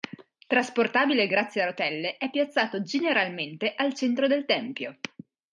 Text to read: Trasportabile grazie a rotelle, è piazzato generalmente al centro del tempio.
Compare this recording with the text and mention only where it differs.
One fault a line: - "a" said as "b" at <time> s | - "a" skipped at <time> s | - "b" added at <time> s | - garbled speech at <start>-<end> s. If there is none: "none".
none